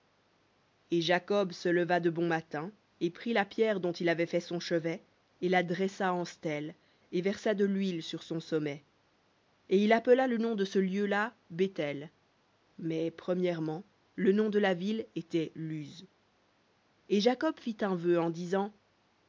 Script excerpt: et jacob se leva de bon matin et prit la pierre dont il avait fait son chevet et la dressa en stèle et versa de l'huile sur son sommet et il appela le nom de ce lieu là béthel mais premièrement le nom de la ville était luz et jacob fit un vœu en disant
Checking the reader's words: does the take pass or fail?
pass